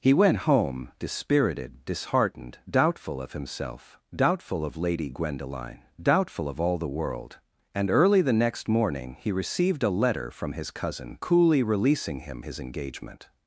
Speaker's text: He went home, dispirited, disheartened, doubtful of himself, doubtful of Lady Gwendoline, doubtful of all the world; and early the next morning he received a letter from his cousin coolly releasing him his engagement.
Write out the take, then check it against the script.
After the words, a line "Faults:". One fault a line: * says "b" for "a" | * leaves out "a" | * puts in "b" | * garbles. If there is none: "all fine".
He went home, dispirited, disheartened, doubtful of himself, doubtful of Lady Gwendoline, doubtful of all the world; and early the next morning he received a letter from his cousin coolly releasing him his engagement.
Faults:
all fine